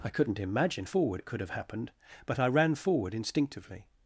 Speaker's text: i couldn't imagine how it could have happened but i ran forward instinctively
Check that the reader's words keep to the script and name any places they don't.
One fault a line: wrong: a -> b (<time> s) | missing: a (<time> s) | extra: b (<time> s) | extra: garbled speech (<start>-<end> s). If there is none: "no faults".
wrong: how -> forward (0.8 s)